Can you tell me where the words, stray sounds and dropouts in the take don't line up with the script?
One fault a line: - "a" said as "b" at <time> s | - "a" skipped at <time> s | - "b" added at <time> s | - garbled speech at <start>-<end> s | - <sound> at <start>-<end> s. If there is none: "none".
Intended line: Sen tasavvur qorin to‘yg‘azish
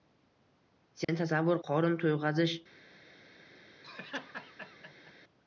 - dropout at 1.0-1.1 s
- laugh at 3.8-5.1 s